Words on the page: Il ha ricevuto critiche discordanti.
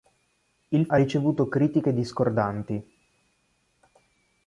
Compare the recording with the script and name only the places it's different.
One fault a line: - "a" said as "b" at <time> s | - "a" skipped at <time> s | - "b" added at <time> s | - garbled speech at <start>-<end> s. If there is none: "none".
none